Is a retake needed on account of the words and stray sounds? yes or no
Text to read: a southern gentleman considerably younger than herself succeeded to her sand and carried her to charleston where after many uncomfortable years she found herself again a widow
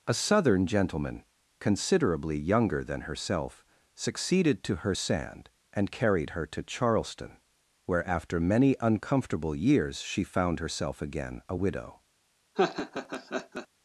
yes